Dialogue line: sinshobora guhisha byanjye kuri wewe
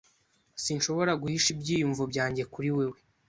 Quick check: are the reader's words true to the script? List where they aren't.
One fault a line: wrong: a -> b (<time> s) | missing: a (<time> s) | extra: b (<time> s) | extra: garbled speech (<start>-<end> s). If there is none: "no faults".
extra: ibyiyumvo (1.5 s)